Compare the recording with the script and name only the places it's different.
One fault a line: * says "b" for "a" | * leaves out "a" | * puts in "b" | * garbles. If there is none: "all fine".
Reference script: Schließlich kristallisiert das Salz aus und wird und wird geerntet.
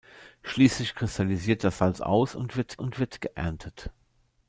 all fine